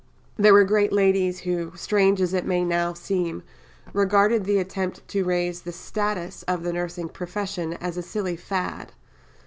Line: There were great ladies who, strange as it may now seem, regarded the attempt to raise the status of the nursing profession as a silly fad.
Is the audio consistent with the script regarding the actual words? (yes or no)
yes